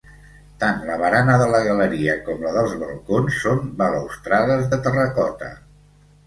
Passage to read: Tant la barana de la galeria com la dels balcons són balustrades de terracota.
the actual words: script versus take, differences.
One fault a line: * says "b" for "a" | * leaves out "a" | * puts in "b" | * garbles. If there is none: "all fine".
all fine